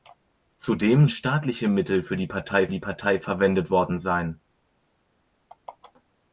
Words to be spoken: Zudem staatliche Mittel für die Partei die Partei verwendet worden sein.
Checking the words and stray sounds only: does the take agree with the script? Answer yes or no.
yes